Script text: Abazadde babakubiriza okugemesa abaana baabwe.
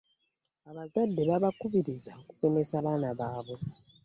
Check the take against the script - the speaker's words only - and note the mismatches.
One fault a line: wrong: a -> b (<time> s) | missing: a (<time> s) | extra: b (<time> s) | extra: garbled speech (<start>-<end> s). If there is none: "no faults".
no faults